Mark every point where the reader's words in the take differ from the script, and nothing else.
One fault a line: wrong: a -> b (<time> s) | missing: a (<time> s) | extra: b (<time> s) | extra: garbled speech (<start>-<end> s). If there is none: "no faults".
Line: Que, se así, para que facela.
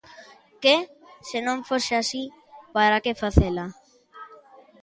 extra: non fose (1.5 s)